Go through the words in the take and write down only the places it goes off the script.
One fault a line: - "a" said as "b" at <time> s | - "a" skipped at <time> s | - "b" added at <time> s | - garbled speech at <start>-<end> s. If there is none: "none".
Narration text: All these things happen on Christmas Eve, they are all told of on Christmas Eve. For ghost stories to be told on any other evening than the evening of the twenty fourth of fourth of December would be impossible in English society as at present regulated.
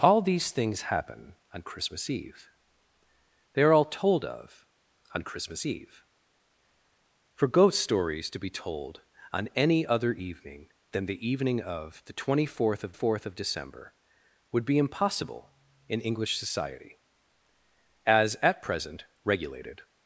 none